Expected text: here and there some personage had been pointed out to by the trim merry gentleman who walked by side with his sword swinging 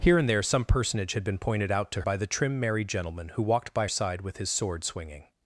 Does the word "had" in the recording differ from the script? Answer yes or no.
no